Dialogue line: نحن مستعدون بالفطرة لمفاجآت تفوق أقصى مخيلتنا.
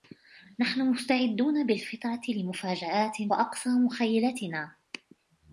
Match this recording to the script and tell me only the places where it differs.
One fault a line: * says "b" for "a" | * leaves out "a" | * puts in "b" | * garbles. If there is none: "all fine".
* leaves out "تفوق"